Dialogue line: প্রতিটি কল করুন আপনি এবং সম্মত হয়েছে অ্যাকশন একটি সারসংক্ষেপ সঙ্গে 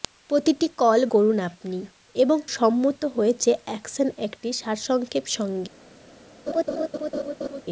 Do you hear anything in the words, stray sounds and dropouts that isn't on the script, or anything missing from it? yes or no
yes